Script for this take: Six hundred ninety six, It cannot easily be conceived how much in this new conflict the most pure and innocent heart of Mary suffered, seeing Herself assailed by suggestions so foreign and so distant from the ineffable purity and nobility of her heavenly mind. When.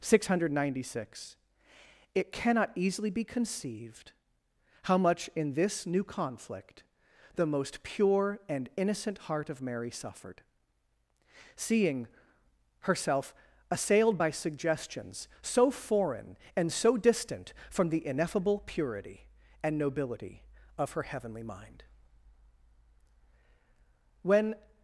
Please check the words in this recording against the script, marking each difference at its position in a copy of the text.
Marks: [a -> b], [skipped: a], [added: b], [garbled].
Six hundred ninety six, It cannot easily be conceived how much in this new conflict the most pure and innocent heart of Mary suffered, seeing Herself assailed by suggestions so foreign and so distant from the ineffable purity and nobility of her heavenly mind. When.